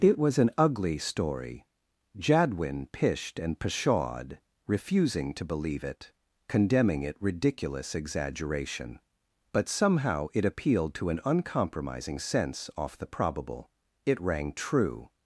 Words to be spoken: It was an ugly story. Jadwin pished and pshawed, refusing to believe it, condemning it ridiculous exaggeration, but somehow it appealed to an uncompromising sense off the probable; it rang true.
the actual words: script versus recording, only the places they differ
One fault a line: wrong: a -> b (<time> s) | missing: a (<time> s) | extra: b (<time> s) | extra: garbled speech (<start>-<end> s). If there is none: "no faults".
no faults